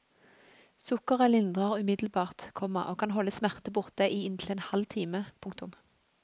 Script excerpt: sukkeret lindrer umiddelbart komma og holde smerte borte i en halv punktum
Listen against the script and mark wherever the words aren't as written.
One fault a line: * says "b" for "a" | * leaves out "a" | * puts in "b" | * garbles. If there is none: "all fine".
* puts in "kan"
* puts in "inntil"
* puts in "time"